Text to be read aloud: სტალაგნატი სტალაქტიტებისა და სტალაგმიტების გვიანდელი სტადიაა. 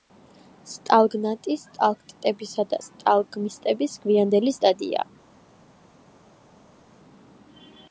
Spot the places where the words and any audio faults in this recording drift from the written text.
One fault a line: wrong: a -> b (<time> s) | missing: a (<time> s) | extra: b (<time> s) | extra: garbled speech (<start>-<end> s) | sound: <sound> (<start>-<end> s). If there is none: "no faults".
no faults